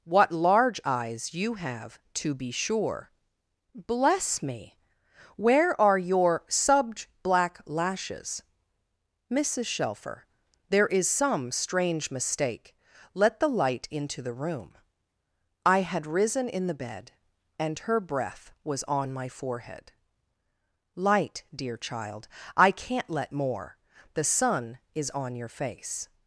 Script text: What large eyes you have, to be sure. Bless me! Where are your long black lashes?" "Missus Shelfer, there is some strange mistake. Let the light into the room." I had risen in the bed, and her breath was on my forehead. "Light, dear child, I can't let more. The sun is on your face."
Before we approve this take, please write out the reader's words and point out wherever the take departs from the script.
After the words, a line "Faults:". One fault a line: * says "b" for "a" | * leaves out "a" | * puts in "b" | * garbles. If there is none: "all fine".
What large eyes you have, to be sure. Bless me! Where are your subj black lashes?" "Missus Shelfer, there is some strange mistake. Let the light into the room." I had risen in the bed, and her breath was on my forehead. "Light, dear child, I can't let more. The sun is on your face."
Faults:
* says "subj" for "long"